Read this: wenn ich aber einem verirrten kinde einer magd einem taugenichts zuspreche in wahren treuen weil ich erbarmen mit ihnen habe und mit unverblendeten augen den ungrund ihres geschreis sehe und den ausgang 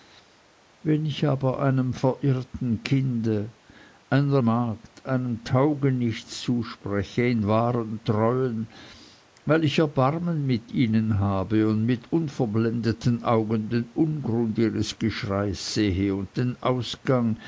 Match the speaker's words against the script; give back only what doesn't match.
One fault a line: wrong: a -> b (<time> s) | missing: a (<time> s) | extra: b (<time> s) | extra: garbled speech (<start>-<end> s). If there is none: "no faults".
no faults